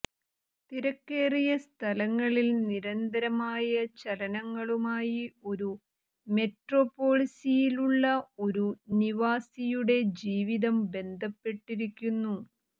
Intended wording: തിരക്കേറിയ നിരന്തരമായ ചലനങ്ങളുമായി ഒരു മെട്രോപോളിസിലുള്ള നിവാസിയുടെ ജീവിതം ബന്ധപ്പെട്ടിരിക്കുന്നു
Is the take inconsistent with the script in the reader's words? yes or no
yes